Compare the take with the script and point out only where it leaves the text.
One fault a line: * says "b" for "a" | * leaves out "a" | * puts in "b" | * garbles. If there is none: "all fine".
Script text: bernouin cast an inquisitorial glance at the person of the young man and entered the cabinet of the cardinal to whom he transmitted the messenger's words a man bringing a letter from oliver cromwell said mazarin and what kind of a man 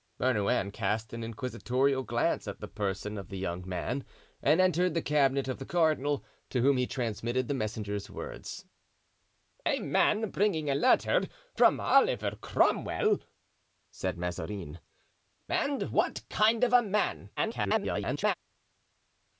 * garbles